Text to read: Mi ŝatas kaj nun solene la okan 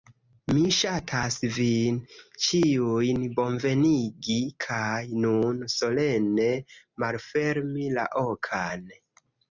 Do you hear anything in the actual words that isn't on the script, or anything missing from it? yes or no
yes